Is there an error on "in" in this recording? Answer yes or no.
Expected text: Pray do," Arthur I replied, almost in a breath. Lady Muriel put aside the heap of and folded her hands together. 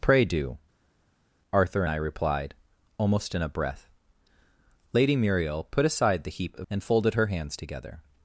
no